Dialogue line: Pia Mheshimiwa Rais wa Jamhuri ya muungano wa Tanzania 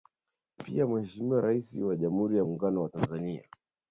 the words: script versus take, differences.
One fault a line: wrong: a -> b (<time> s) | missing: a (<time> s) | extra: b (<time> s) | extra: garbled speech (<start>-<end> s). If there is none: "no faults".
no faults